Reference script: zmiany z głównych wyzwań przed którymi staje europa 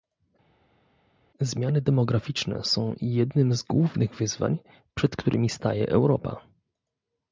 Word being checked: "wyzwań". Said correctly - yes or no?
yes